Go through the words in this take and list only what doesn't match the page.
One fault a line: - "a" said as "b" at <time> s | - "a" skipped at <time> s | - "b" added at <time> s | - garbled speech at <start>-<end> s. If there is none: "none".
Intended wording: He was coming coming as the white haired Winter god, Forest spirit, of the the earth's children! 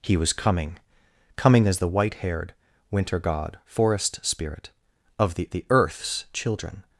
none